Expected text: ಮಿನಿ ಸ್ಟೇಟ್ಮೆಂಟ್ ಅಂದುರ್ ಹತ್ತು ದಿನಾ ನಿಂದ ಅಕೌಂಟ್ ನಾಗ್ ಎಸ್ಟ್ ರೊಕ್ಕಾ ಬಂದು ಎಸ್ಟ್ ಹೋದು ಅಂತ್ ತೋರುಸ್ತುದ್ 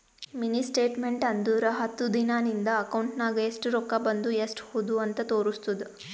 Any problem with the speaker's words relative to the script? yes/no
no